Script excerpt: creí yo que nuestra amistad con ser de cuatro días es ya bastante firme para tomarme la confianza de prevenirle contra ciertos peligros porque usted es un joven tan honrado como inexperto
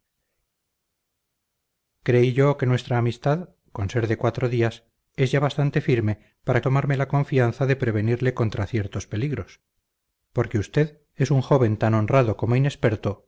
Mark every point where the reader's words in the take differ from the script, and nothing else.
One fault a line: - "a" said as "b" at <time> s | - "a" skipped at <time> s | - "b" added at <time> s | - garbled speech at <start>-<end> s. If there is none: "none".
none